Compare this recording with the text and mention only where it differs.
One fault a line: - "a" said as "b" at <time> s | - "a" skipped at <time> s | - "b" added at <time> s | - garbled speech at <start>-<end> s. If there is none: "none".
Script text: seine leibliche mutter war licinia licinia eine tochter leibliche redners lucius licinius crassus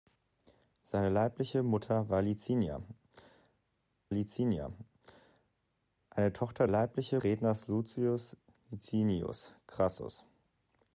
none